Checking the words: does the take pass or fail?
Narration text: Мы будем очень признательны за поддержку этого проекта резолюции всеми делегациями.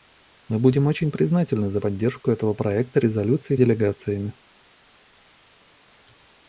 fail